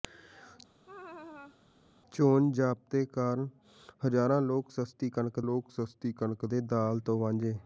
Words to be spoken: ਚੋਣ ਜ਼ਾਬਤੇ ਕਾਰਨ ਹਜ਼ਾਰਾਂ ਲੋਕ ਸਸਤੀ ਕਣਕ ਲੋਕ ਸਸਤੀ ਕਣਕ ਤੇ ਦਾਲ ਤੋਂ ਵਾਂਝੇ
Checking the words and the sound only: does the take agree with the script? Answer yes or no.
no